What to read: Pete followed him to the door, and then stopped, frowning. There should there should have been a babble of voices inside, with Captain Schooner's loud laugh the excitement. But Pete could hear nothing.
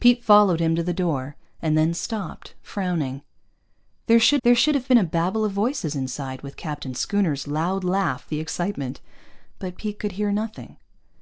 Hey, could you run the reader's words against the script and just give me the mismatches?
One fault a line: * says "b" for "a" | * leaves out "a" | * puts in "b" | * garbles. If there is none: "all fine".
all fine